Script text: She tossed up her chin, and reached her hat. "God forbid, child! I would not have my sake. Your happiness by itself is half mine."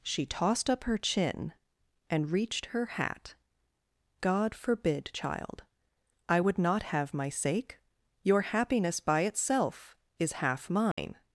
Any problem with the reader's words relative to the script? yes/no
no